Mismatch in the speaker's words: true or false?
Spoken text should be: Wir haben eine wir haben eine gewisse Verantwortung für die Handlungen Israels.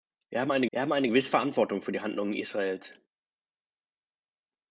false